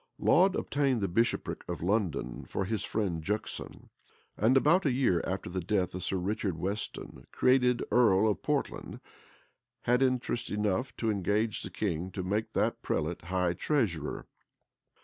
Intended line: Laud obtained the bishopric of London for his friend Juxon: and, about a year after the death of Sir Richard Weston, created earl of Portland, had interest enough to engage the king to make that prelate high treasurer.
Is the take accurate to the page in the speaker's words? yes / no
yes